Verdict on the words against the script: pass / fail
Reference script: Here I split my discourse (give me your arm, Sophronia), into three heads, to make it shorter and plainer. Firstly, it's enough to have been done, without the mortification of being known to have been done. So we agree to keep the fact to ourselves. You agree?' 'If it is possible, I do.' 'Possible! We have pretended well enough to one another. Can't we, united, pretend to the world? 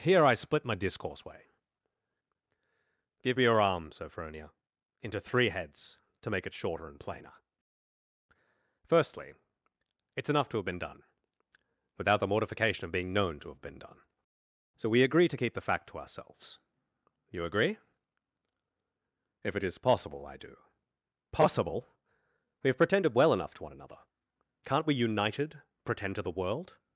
fail